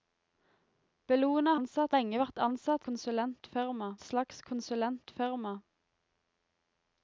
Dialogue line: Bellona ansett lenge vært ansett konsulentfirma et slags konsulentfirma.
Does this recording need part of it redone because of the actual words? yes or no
no